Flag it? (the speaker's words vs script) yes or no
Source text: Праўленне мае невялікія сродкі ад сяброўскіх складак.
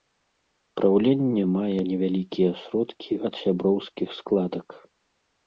no